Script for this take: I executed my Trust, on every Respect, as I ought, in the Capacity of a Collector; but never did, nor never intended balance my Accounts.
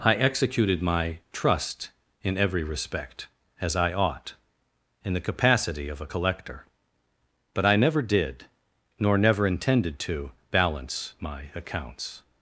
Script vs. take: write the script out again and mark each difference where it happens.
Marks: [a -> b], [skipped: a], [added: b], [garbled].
I executed my Trust, [on -> in] every Respect, as I ought, in the Capacity of a Collector; but [added: I] never did, nor never intended [added: to] balance my Accounts.